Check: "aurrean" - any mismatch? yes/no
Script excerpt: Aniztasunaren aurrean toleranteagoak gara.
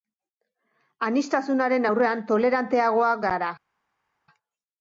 no